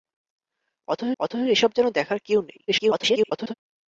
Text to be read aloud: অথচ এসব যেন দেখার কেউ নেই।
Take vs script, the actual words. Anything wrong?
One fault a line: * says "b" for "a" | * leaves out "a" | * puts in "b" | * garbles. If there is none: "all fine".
* puts in "অথচ"
* garbles